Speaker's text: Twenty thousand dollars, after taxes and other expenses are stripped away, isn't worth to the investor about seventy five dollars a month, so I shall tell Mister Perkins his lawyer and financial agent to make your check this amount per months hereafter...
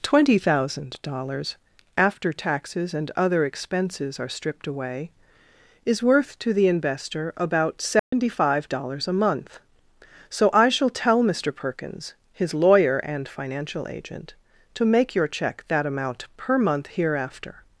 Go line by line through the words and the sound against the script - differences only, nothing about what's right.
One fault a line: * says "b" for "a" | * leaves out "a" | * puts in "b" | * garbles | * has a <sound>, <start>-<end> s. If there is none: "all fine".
* says "is" for "isn't"
* has a dropout, 8.0-8.1 s
* says "that" for "this"
* says "month" for "months"